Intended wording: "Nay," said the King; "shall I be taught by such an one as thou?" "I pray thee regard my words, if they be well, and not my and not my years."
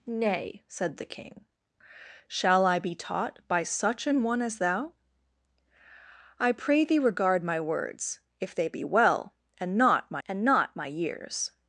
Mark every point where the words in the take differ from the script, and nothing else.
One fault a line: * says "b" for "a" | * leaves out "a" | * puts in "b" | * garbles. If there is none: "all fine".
all fine